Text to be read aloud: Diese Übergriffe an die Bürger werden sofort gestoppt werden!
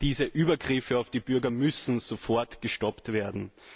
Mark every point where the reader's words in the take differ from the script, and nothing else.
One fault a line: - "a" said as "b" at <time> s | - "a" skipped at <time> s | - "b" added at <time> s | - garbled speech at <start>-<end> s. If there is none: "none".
- "an" said as "auf" at 1.0 s
- "werden" said as "müssen" at 1.5 s